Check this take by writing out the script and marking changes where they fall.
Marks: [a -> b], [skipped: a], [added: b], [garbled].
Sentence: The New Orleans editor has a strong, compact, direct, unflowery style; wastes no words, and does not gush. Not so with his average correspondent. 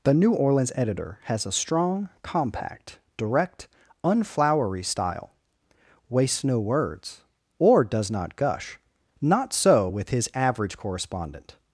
The New Orleans editor has a strong, compact, direct, unflowery style; wastes no words, [and -> or] does not gush. Not so with his average correspondent.